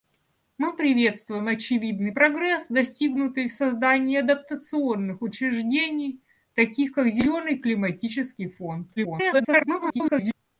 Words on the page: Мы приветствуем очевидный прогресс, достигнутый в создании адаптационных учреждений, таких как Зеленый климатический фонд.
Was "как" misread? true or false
false